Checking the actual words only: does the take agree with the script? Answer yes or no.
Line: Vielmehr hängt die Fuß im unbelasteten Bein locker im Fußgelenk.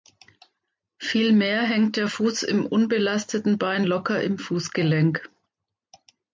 no